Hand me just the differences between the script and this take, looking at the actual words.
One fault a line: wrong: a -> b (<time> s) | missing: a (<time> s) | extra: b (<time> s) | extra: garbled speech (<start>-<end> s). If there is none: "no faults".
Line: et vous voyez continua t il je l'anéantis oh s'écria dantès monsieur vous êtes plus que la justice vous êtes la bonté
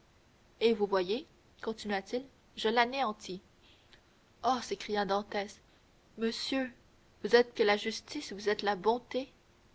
missing: plus (7.5 s)